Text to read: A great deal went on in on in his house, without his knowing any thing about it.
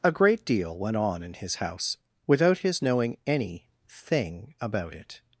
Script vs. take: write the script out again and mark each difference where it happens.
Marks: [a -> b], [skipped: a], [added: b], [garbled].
A great deal went on in [skipped: on in] his house, without his knowing any thing about it.